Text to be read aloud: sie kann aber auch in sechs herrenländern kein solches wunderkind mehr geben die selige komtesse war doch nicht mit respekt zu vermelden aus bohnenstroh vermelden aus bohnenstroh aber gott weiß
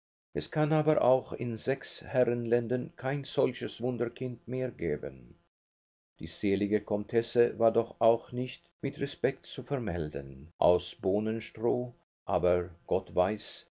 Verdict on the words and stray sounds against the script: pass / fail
fail